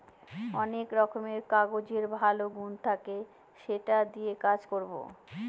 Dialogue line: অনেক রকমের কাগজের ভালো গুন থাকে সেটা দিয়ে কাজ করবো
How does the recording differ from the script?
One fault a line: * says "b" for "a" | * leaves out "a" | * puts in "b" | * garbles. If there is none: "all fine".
all fine